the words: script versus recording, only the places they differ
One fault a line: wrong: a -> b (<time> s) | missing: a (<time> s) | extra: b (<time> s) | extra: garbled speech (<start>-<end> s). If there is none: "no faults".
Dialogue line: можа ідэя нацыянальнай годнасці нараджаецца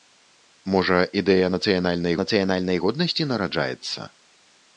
extra: нацыянальнай (2.2 s)